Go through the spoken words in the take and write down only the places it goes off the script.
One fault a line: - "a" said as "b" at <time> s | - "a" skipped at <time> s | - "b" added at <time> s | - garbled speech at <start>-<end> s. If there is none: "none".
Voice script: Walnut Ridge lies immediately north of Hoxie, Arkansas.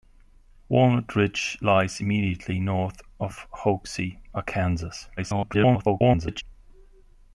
- garbled speech at 5.2-6.4 s